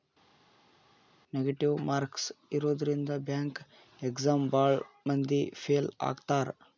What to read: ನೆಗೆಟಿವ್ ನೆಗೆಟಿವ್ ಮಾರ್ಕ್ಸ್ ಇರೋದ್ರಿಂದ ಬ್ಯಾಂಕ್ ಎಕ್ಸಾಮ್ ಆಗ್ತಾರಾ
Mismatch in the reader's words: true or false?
true